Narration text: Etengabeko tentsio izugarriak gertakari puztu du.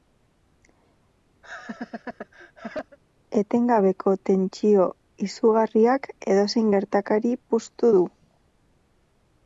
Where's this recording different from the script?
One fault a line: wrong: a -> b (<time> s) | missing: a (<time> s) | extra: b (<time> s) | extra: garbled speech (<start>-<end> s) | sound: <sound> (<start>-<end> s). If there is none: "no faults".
sound: laugh (1.4-3.0 s)
extra: edozein (6.3 s)